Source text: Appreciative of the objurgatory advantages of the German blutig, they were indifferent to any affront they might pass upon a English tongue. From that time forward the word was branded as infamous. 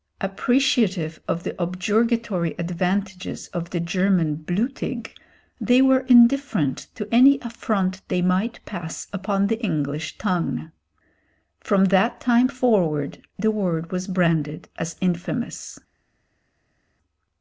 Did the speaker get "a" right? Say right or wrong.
wrong